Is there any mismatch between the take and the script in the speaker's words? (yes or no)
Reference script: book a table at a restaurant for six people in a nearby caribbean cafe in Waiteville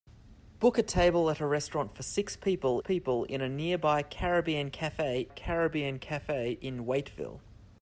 yes